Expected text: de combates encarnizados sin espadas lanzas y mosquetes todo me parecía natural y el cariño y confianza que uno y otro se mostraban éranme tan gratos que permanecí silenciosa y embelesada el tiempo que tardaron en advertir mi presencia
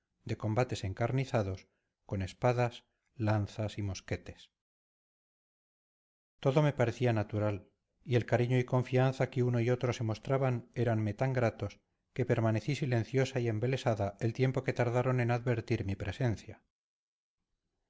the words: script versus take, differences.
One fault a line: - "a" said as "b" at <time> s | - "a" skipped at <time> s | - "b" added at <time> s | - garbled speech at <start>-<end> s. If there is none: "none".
- "sin" said as "con" at 2.1 s